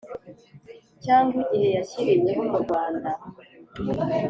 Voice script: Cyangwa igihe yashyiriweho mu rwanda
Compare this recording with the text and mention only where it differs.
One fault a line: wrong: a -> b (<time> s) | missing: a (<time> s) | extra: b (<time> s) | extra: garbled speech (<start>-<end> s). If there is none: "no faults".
no faults